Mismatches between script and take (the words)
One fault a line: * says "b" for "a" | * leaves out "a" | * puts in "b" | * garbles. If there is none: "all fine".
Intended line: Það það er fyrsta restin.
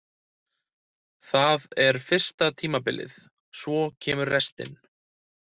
* leaves out "það"
* puts in "tímabilið svo kemur"